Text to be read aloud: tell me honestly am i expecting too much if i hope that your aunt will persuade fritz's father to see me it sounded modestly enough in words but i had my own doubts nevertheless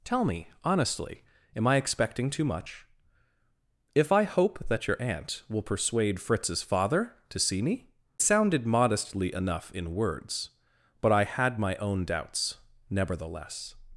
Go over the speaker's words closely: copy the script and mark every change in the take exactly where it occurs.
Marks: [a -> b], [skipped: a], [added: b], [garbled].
tell me honestly am i expecting too much if i hope that your aunt will persuade fritz's father to see me [skipped: it] sounded modestly enough in words but i had my own doubts nevertheless